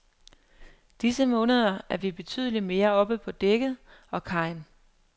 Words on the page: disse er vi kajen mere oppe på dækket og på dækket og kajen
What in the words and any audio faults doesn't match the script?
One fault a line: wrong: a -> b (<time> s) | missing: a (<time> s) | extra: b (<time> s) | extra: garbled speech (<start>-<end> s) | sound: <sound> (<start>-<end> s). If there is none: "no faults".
extra: måneder (1.2 s)
wrong: kajen -> betydeligt (2.1 s)
missing: på dækket og (4.2 s)